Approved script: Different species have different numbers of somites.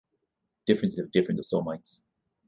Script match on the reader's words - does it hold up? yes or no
no